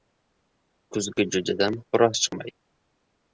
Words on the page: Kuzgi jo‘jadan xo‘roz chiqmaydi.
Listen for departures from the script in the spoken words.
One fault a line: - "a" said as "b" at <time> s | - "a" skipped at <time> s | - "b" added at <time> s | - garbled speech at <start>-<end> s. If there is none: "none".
none